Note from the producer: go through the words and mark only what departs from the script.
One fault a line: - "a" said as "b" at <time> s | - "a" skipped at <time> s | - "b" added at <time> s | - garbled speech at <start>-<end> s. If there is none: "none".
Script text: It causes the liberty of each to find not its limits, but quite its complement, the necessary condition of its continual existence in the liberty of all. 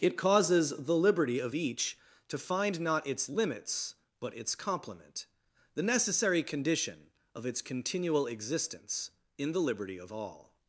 - "quite" skipped at 4.4 s